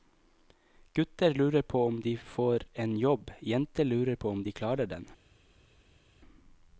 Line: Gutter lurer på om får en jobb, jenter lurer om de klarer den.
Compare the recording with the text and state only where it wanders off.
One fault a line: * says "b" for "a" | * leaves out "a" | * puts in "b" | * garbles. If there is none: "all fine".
* puts in "de"
* puts in "på"